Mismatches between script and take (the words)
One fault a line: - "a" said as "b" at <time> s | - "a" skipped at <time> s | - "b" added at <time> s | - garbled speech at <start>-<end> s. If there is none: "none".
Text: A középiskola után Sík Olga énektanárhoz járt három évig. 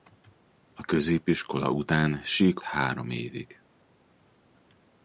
- "Olga énektanárhoz járt" skipped at 2.6 s